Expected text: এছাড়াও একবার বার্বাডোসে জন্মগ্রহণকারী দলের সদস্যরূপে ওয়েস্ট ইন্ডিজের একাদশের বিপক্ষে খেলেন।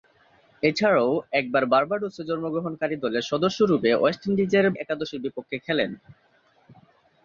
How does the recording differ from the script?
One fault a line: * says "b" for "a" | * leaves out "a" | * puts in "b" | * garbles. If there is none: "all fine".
all fine